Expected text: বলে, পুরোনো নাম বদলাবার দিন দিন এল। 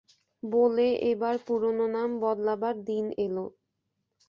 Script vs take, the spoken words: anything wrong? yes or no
yes